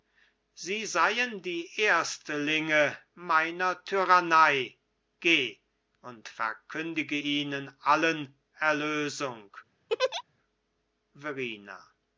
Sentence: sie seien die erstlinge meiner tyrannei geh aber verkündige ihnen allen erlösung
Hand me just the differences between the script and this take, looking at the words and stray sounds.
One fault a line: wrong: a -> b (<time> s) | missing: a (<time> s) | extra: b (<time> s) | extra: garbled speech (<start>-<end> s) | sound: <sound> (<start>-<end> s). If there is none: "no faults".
wrong: aber -> und (6.0 s)
sound: laugh (9.9-10.2 s)